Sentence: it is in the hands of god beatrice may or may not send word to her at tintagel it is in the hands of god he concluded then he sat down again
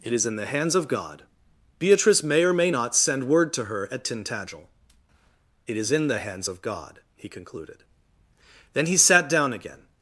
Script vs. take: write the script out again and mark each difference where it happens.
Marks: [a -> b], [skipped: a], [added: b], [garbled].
it is in the hands of god beatrice may or may not send word to her at tintagel it is in the hands of god he concluded then he sat down again